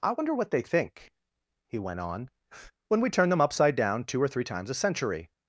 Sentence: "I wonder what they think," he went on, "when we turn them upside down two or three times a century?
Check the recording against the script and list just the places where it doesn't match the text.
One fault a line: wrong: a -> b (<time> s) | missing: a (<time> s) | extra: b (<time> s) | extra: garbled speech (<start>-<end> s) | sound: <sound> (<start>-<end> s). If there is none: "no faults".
no faults